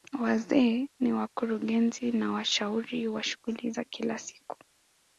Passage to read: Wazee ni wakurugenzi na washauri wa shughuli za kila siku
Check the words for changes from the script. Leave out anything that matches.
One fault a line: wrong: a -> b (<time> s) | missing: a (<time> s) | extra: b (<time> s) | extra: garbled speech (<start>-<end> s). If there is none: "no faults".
no faults